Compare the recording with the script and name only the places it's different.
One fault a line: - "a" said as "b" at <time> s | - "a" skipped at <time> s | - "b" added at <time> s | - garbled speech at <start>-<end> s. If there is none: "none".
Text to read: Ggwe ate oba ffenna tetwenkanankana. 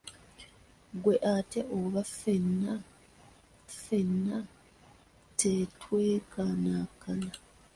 - "ffenna" added at 3.7 s